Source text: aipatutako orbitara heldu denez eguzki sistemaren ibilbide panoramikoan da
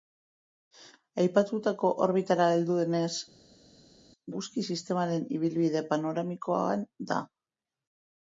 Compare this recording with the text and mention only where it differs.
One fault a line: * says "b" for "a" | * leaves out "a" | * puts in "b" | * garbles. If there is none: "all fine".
all fine